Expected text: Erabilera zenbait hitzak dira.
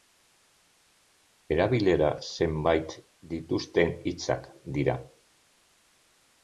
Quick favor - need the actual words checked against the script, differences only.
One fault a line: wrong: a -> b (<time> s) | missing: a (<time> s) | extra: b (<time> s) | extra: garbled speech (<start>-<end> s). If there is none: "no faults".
extra: dituzten (3.3 s)